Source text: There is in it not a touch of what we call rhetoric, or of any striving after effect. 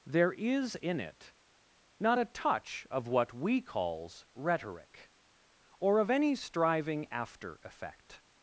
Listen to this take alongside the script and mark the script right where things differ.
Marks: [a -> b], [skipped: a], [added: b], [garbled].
There is in it not a touch of what we [call -> calls] rhetoric, or of any striving after effect.